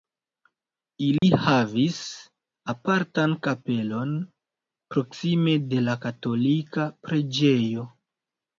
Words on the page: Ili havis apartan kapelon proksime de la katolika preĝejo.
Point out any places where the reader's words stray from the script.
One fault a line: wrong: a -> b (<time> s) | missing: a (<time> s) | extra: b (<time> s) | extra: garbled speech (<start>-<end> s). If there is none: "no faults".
no faults